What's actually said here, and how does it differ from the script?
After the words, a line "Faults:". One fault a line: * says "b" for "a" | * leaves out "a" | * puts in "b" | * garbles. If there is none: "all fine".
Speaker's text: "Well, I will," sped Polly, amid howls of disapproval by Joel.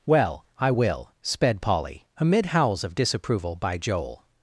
"Well, I will," sped Polly, amid howls of disapproval by Joel.
Faults:
all fine